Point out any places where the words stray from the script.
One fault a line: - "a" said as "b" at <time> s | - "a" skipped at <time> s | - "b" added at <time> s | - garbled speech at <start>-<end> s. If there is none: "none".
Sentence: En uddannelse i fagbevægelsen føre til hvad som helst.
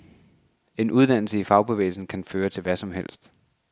- "kan" added at 2.1 s